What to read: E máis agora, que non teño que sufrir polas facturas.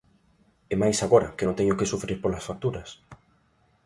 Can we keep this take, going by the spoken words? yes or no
yes